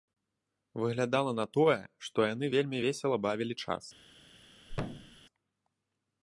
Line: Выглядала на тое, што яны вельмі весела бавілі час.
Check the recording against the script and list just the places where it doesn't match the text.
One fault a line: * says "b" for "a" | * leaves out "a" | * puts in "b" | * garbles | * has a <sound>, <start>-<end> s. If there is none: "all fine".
* has a thud, 4.7-5.2 s